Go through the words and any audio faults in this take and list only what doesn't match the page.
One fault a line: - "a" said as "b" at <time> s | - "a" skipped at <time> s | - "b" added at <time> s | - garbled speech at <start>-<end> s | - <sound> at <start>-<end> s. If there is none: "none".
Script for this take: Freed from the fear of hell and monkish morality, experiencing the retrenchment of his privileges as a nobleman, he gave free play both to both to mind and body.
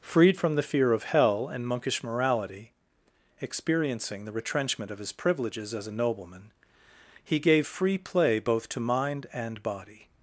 - "both to" skipped at 8.8 s